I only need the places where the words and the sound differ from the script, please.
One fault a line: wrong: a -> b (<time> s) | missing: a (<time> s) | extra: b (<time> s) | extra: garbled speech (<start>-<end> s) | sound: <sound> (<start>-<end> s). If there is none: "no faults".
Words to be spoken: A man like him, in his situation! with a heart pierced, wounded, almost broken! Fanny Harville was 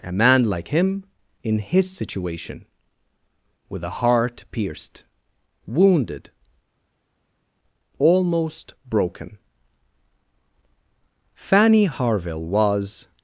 no faults